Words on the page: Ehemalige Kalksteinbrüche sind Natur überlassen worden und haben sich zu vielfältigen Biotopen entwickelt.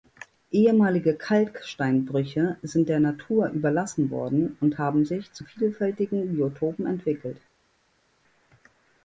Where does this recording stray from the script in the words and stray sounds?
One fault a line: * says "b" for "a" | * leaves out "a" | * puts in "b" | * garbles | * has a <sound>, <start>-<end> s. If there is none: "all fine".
* puts in "der"